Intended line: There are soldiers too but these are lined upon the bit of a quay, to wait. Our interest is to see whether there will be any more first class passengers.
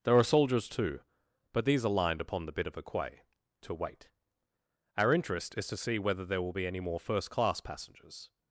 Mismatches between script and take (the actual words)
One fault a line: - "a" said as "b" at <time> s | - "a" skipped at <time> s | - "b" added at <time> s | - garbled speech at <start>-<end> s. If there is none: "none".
none